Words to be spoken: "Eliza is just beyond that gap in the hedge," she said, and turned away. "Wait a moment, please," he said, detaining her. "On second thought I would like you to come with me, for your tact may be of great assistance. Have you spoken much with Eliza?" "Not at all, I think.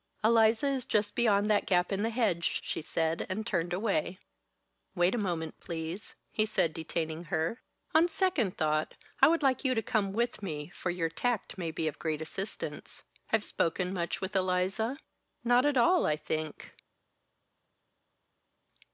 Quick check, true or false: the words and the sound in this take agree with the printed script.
false